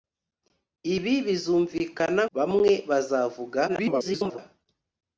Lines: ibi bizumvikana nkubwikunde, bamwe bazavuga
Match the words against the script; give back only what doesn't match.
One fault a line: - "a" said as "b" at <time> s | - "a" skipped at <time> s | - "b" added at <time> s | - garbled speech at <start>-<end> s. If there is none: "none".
- "nkubwikunde" skipped at 2.2 s
- garbled speech at 3.7-4.4 s